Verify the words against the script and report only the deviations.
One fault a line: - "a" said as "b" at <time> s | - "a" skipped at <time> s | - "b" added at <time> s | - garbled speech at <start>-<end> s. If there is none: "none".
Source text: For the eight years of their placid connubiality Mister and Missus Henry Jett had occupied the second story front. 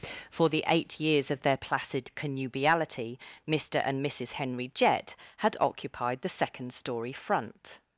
none